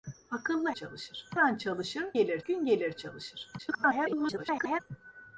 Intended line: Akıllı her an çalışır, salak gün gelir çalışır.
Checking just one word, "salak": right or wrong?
wrong